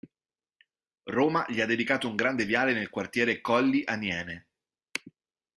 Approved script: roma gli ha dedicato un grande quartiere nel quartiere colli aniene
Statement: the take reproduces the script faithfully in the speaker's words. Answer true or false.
false